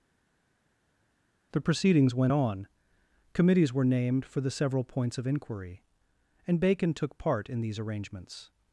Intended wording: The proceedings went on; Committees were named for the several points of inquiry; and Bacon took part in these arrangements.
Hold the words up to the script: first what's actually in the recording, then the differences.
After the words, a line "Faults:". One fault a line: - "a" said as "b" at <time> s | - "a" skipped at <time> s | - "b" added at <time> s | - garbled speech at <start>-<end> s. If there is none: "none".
The proceedings went on; Committees were named for the several points of inquiry; and Bacon took part in these arrangements.
Faults:
none